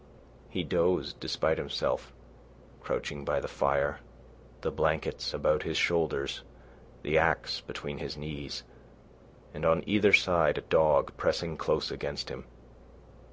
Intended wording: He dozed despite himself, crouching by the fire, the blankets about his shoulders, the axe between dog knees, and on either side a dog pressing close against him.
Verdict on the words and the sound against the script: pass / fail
fail